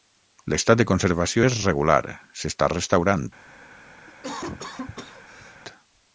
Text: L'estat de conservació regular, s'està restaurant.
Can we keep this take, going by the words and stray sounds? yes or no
no